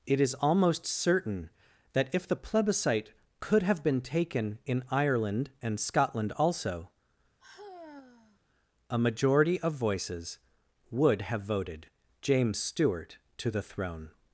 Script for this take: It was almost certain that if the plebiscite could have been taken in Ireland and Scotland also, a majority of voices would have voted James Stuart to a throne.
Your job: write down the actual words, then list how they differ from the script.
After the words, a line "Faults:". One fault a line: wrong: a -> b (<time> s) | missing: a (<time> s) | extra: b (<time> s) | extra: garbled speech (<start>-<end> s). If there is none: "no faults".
It is almost certain that if the plebiscite could have been taken in Ireland and Scotland also, a majority of voices would have voted James Stuart to the throne.
Faults:
wrong: was -> is (0.2 s)
wrong: a -> the (13.5 s)